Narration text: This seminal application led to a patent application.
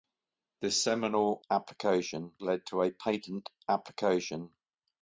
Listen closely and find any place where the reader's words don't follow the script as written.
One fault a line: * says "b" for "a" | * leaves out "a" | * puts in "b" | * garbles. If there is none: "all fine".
all fine